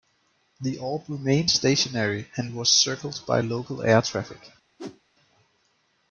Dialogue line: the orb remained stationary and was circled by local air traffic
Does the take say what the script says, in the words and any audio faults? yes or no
no